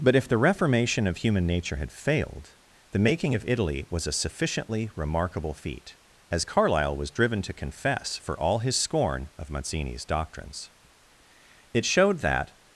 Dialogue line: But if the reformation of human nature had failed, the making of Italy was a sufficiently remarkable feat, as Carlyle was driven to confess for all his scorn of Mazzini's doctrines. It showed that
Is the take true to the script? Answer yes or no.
yes